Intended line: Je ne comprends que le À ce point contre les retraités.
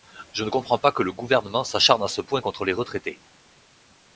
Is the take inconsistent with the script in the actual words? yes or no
yes